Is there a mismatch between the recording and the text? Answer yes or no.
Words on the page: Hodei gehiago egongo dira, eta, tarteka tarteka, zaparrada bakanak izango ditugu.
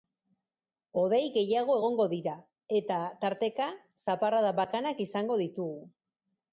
yes